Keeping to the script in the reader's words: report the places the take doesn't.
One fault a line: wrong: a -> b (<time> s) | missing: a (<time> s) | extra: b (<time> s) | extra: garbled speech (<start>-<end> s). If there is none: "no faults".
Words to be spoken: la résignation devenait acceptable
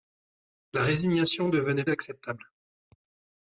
no faults